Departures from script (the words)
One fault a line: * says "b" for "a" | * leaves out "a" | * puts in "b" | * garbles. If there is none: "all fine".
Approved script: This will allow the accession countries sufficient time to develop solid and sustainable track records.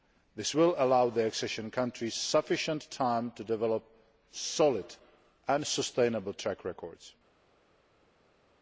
all fine